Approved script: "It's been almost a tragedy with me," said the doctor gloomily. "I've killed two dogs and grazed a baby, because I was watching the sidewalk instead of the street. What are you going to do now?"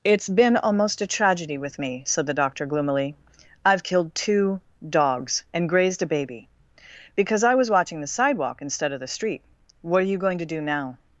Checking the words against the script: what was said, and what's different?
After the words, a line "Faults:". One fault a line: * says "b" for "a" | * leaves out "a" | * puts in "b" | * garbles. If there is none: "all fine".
"It's been almost a tragedy with me," said the doctor gloomily. "I've killed two dogs and grazed a baby, because I was watching the sidewalk instead of the street. What are you going to do now?"
Faults:
all fine